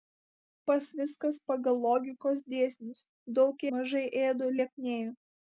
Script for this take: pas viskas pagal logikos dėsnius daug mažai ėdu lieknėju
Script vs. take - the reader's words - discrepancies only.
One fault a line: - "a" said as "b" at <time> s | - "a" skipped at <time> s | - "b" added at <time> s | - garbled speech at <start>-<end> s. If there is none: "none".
none